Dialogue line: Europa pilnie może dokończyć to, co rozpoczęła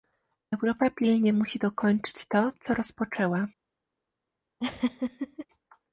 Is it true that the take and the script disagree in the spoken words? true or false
true